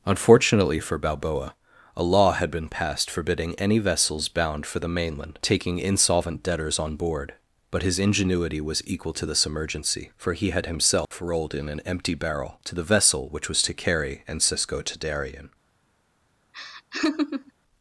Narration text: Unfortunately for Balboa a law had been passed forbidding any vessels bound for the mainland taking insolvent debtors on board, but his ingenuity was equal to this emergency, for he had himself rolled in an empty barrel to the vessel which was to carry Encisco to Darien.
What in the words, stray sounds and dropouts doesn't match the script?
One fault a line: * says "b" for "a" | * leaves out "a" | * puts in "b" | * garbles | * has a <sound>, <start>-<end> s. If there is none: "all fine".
* has a dropout, 11.1-11.1 s
* has a laugh, 16.5-17.5 s